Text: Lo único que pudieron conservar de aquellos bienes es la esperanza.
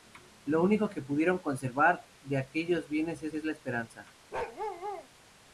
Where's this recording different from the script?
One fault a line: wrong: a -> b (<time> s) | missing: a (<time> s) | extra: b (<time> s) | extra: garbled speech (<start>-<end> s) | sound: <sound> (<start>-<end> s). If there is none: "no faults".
extra: es (3.3 s)
sound: bark (4.3-5.1 s)